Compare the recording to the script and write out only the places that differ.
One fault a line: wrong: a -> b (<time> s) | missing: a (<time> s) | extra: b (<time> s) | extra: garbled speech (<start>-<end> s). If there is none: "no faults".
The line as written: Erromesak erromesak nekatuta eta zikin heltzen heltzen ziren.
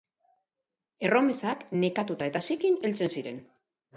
missing: erromesak (1.6 s)
missing: heltzen (3.1 s)